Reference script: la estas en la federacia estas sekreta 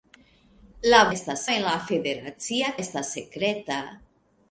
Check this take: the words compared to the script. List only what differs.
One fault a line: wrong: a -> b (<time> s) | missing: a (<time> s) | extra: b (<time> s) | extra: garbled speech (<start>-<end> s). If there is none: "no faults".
no faults